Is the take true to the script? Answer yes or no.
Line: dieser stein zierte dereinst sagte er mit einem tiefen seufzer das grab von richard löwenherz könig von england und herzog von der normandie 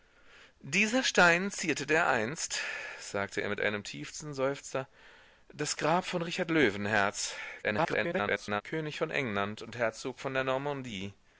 no